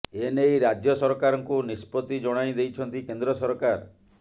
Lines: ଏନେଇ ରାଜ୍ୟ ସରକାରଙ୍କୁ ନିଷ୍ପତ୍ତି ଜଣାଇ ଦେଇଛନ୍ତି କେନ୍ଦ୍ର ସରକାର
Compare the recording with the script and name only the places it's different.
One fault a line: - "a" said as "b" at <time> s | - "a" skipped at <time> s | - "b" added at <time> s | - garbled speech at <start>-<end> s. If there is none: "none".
none